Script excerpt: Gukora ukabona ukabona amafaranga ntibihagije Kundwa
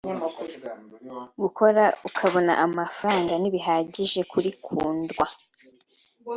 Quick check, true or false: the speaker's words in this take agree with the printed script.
false